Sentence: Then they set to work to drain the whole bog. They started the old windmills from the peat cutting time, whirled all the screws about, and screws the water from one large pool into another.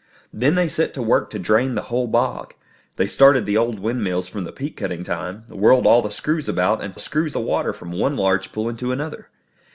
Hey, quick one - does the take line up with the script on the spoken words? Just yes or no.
yes